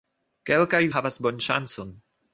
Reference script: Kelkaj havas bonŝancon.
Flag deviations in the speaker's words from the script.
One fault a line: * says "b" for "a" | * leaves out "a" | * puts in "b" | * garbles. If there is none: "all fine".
all fine